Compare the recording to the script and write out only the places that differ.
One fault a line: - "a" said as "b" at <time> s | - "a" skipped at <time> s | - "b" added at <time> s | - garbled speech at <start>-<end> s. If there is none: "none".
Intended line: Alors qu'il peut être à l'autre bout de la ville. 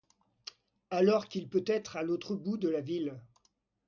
none